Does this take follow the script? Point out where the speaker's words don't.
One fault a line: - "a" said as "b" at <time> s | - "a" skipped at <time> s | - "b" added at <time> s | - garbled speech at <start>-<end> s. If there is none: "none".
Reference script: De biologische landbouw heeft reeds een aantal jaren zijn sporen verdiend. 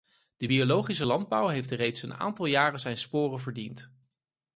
none